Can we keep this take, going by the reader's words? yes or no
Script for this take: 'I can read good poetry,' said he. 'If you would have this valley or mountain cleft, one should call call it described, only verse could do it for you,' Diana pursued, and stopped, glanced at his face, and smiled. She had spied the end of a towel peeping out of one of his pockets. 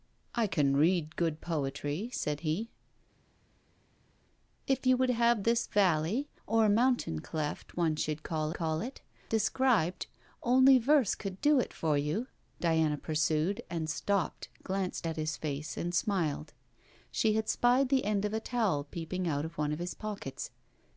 yes